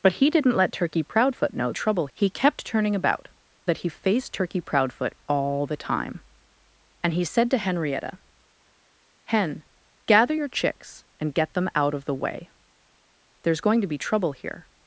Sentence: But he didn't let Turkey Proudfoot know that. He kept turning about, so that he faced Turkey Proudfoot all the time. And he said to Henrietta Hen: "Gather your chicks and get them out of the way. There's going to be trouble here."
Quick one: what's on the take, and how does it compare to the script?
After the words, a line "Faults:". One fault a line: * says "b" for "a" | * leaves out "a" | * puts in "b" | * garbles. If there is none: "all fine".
But he didn't let Turkey Proudfoot know trouble. He kept turning about, that he faced Turkey Proudfoot all the time. And he said to Henrietta Hen: "Gather your chicks and get them out of the way. There's going to be trouble here."
Faults:
* says "trouble" for "that"
* leaves out "so"